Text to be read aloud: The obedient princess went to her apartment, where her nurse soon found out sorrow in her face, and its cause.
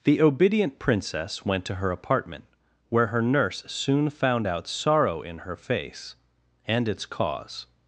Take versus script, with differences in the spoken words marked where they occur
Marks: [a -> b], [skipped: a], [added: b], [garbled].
The obedient princess went to her apartment, where her nurse soon found out sorrow in her face, and its cause.